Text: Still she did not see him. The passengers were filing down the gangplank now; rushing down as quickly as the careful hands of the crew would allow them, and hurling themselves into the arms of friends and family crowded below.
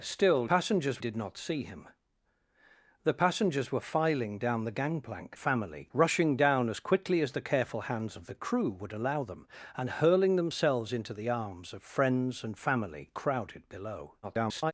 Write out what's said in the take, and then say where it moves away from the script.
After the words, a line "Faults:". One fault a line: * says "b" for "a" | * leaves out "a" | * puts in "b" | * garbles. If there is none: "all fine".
Still passengers did not see him. The passengers were filing down the gangplank family; rushing down as quickly as the careful hands of the crew would allow them, and hurling themselves into the arms of friends and family crowded below. [garbled]
Faults:
* says "passengers" for "she"
* says "family" for "now"
* garbles